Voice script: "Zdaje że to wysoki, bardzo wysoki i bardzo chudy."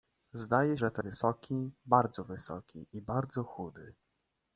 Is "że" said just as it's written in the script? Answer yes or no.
yes